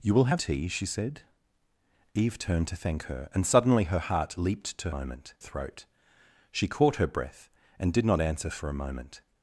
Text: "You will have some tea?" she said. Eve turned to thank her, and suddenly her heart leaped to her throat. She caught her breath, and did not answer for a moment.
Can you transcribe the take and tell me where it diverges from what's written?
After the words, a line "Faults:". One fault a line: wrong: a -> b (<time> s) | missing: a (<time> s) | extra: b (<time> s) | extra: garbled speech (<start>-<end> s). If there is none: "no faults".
"You will have tea?" she said. Eve turned to thank her, and suddenly her heart leaped to moment throat. She caught her breath, and did not answer for a moment.
Faults:
missing: some (0.4 s)
wrong: her -> moment (4.9 s)